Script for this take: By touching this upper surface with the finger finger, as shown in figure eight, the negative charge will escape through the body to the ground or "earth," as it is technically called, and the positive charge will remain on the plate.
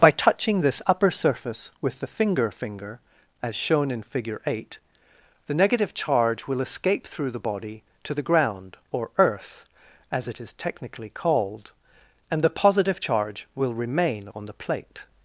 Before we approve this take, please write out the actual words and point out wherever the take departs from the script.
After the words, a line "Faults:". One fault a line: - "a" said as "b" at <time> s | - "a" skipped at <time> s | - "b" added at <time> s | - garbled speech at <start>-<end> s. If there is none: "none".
By touching this upper surface with the finger finger, as shown in figure eight, the negative charge will escape through the body to the ground or "earth," as it is technically called, and the positive charge will remain on the plate.
Faults:
none